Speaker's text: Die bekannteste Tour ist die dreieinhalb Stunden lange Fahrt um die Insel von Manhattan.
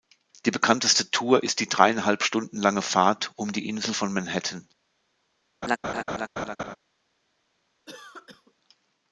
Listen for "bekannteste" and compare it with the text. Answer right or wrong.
right